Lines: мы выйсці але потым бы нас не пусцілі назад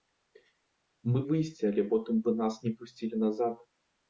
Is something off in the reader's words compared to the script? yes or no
no